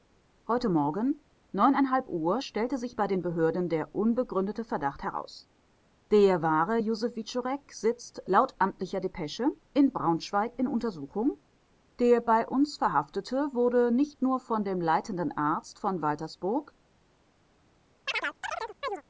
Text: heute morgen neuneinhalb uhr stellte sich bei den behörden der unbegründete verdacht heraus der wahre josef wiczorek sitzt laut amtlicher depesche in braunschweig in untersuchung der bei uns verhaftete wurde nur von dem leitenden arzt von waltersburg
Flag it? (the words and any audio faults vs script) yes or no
yes